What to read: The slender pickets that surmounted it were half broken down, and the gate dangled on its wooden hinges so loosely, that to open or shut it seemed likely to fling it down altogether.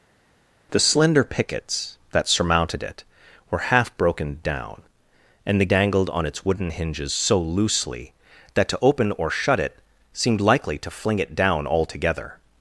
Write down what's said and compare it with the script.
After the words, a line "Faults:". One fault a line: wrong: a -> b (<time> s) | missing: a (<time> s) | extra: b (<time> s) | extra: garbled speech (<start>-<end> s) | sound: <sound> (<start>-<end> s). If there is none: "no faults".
The slender pickets that surmounted it were half broken down, and the dangled on its wooden hinges so loosely, that to open or shut it seemed likely to fling it down altogether.
Faults:
missing: gate (5.7 s)